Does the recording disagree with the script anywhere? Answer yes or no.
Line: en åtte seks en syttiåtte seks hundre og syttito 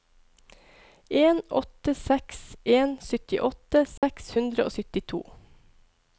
no